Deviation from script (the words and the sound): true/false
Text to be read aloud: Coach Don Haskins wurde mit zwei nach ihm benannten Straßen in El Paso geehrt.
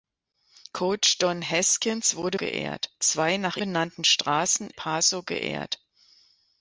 true